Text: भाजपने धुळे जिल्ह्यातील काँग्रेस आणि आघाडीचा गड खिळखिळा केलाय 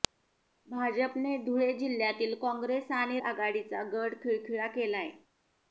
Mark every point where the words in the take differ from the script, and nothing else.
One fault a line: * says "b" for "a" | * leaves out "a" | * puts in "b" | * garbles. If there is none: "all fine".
all fine